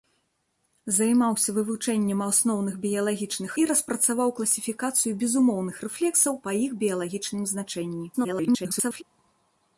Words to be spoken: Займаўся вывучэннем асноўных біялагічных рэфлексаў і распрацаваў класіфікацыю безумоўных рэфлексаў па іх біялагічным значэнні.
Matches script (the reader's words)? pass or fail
fail